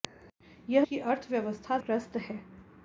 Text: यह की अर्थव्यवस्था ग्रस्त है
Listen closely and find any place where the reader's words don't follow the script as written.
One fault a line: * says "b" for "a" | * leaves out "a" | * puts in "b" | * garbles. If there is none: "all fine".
all fine